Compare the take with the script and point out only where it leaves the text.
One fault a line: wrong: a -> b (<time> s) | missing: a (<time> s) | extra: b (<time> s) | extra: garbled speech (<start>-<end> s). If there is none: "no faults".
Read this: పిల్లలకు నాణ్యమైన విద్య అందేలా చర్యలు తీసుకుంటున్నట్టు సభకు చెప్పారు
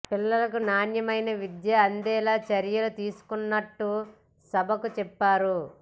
no faults